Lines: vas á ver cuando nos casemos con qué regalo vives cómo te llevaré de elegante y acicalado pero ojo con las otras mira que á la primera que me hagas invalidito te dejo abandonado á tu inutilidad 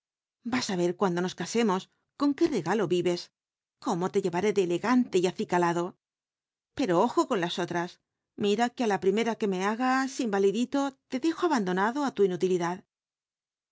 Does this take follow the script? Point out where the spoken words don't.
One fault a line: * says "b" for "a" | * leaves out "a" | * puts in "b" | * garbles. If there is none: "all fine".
all fine